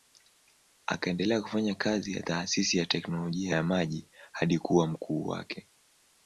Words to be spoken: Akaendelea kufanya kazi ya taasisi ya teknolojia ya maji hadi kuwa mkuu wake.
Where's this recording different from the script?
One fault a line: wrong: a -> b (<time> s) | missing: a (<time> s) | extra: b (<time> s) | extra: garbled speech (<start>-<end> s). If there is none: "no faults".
no faults